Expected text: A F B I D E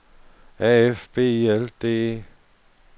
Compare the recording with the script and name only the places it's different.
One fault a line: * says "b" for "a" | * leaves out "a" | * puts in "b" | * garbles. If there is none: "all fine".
* puts in "L"